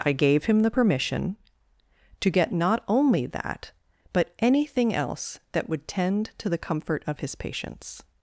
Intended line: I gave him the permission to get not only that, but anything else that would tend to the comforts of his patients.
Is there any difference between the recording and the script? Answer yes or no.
yes